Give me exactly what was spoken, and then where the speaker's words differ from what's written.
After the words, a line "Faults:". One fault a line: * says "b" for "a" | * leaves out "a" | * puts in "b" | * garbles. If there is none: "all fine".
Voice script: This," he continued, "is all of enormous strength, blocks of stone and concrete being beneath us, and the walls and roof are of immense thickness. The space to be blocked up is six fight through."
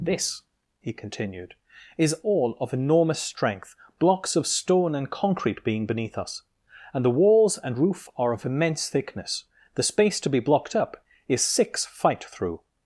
This," he continued, "is all of enormous strength, blocks of stone and concrete being beneath us, and the walls and roof are of immense thickness. The space to be blocked up is six fight through."
Faults:
all fine